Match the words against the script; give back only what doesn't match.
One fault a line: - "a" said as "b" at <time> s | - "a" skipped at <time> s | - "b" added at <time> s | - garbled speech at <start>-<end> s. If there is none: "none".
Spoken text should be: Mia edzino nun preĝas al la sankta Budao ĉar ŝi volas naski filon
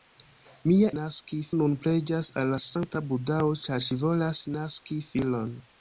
- "edzino" said as "naski" at 1.0 s